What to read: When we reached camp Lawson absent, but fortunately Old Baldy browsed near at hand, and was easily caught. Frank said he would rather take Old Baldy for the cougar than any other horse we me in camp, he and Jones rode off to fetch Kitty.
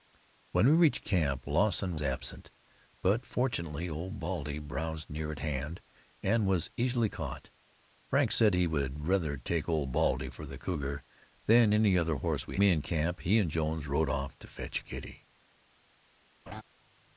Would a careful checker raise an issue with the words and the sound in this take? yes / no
yes